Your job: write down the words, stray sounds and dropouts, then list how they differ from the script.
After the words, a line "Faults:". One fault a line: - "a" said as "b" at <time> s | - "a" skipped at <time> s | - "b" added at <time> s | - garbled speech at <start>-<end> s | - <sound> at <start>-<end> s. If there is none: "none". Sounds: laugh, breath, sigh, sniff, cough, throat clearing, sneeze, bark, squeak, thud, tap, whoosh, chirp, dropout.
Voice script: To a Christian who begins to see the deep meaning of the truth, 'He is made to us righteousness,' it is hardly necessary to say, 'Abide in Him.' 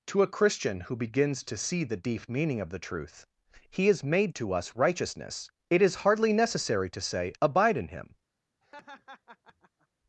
To a Christian who begins to see the deep meaning of the truth, 'He is made to us righteousness,' it is hardly necessary to say, 'Abide in Him.'
Faults:
- laugh at 8.6-9.9 s